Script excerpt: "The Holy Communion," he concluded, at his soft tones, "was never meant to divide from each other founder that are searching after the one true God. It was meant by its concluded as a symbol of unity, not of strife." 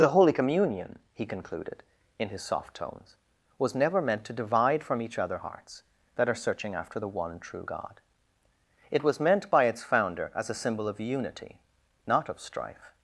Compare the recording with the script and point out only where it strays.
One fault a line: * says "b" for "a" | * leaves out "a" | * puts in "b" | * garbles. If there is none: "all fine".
* says "in" for "at"
* says "hearts" for "founder"
* says "founder" for "concluded"